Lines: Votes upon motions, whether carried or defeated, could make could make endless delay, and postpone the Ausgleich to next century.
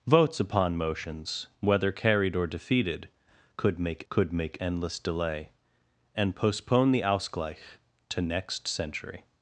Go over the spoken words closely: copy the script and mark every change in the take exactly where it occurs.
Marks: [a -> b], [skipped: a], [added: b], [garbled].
Votes upon motions, whether carried or defeated, could make could make endless delay, and postpone the Ausgleich to next century.